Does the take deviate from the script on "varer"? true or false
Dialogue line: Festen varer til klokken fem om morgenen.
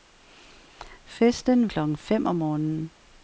true